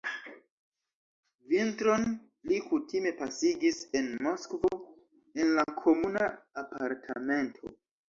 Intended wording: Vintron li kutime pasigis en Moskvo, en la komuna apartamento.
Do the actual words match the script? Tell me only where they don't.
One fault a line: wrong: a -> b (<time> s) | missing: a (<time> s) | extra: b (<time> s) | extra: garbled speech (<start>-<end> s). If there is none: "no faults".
no faults